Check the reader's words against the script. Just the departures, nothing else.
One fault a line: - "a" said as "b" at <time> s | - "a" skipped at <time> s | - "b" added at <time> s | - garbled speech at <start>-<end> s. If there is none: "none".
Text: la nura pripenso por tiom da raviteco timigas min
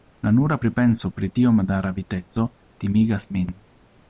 - "por" said as "pri" at 1.2 s